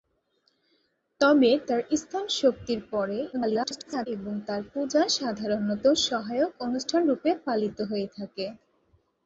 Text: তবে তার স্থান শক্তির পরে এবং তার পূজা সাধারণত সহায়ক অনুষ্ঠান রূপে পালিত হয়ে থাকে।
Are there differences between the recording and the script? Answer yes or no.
yes